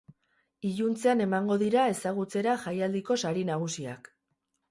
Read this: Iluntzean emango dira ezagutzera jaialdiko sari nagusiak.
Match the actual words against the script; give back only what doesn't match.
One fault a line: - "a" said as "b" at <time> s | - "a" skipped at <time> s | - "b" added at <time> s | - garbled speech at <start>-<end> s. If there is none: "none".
none